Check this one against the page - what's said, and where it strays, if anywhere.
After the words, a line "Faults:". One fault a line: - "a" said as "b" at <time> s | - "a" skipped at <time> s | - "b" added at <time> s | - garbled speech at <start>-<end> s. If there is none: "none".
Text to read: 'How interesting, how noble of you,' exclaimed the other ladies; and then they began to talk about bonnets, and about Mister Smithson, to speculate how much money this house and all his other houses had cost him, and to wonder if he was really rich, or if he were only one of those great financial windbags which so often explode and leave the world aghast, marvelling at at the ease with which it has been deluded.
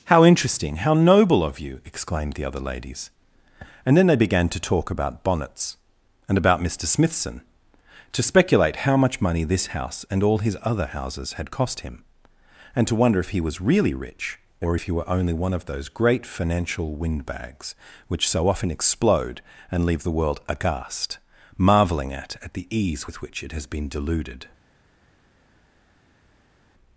'How interesting, how noble of you,' exclaimed the other ladies; and then they began to talk about bonnets, and about Mister Smithson, to speculate how much money this house and all his other houses had cost him, and to wonder if he was really rich, or if he were only one of those great financial windbags which so often explode and leave the world aghast, marvelling at at the ease with which it has been deluded.
Faults:
none